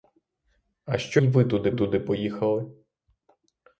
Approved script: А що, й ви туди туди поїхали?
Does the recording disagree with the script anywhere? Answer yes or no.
no